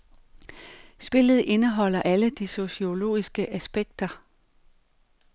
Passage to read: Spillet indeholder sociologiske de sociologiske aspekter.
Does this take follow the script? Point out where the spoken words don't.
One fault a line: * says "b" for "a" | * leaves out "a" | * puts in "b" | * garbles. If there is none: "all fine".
* says "alle" for "sociologiske"